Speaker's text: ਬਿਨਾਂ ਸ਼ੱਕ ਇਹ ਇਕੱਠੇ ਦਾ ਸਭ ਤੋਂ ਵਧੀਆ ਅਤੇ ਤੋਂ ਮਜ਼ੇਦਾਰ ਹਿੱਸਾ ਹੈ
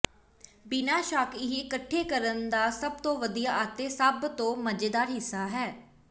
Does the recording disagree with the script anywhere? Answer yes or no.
yes